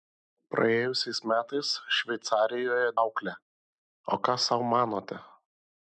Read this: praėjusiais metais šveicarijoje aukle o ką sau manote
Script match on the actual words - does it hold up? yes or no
yes